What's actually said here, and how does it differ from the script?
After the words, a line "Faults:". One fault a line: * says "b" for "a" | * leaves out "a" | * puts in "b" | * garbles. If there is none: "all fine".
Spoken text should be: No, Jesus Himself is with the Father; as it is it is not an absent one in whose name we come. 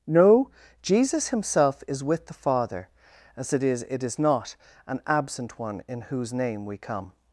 No, Jesus Himself is with the Father; as it is it is not an absent one in whose name we come.
Faults:
all fine